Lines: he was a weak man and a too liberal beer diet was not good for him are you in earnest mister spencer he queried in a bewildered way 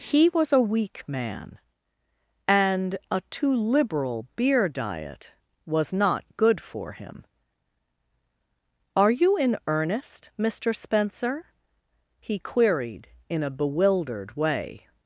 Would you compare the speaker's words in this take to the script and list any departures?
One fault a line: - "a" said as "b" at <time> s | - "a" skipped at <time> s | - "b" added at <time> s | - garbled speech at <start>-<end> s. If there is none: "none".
none